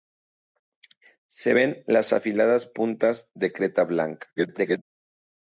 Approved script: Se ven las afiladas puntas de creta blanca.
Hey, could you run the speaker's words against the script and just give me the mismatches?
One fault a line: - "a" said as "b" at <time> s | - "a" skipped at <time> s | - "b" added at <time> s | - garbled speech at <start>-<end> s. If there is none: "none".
- garbled speech at 4.4-4.8 s